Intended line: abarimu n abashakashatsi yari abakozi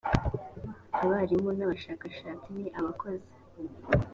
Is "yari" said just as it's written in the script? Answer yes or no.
no